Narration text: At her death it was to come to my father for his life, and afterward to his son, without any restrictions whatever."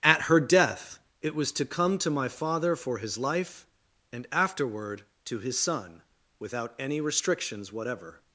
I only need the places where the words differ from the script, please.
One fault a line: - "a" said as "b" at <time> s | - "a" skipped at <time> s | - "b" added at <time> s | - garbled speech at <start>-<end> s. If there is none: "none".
none